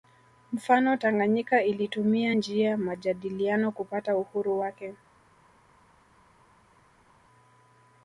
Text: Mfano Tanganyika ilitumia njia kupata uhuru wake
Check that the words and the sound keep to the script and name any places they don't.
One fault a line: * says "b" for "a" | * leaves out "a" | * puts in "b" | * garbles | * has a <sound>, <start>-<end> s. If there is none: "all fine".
* puts in "majadiliano"